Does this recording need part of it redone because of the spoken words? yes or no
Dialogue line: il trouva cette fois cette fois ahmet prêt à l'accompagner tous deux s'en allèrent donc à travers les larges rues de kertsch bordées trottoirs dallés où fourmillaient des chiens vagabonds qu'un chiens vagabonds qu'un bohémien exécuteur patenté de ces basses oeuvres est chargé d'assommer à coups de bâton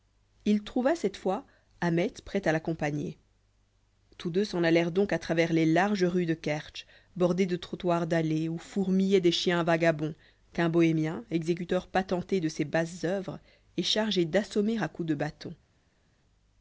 yes